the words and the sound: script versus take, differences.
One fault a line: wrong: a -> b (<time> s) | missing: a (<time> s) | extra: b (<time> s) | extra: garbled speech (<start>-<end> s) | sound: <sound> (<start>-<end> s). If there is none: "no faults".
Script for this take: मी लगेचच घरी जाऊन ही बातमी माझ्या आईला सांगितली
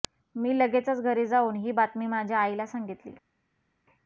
no faults